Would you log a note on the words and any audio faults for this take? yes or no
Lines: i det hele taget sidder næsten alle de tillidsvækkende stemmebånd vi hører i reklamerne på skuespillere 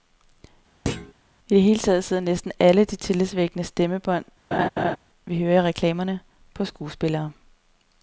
yes